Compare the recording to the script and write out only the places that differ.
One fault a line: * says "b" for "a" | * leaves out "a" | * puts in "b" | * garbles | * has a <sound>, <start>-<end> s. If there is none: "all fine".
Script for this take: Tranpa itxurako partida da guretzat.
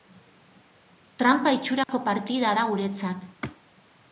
* has a dropout, 1.8-1.9 s